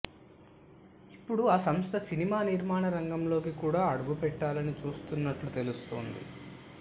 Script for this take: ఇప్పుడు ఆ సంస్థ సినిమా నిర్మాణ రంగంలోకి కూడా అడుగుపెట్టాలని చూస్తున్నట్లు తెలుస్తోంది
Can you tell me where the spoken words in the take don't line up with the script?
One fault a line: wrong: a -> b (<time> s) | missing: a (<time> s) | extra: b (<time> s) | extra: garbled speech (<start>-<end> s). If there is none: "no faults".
no faults